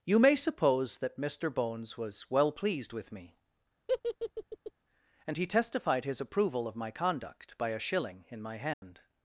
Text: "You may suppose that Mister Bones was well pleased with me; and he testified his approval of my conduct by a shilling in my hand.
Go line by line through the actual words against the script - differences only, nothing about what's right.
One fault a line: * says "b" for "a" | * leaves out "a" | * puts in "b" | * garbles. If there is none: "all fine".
all fine